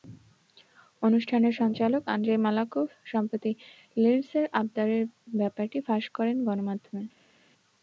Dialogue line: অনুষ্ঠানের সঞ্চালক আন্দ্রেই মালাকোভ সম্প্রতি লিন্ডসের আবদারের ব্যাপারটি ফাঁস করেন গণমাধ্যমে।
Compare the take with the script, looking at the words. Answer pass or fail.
pass